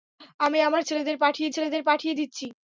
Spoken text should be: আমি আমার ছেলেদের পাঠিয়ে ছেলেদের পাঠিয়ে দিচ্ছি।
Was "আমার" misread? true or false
false